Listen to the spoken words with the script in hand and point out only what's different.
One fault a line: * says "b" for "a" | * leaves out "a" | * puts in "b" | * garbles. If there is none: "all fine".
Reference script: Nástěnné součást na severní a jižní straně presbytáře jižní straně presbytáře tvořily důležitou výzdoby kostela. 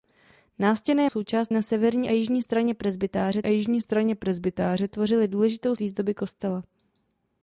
all fine